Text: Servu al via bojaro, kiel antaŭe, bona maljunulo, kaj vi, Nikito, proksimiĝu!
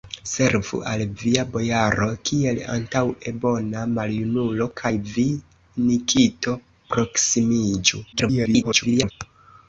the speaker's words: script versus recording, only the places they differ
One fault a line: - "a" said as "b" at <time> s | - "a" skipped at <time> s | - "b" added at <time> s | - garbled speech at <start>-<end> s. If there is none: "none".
- garbled speech at 8.1-9.1 s